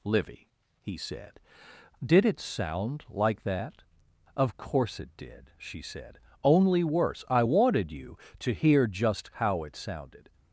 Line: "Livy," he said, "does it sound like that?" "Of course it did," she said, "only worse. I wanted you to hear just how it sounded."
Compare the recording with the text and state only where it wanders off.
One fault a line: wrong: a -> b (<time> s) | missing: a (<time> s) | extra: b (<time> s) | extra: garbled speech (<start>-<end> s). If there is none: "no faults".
wrong: does -> did (2.0 s)